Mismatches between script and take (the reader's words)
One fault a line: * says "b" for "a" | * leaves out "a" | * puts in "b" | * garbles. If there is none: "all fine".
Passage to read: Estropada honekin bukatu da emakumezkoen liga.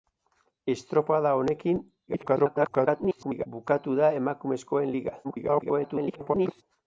* garbles
* garbles